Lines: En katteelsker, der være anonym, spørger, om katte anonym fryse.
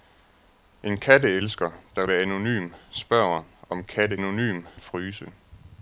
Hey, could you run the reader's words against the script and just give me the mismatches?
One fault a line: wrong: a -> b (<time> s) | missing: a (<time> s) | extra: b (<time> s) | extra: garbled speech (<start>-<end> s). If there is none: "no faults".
no faults